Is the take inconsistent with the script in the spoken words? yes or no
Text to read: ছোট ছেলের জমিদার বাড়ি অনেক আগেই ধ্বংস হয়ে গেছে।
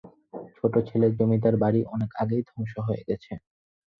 no